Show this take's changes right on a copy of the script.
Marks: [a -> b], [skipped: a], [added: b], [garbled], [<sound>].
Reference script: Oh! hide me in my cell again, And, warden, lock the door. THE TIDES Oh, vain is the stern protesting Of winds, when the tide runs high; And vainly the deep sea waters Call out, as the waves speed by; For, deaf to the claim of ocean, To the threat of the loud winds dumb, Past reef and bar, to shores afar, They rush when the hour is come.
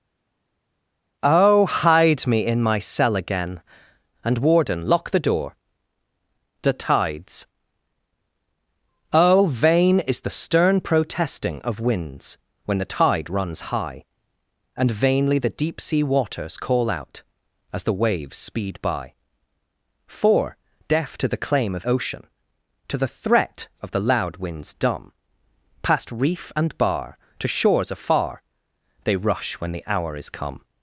Oh! hide me in my cell again, And, warden, lock the door. THE TIDES Oh, vain is the stern protesting Of winds, when the tide runs high; And vainly the deep sea waters Call out, as the waves speed by; For, deaf to the claim of ocean, To the threat of the loud winds dumb, Past reef and bar, to shores afar, They rush when the hour is come.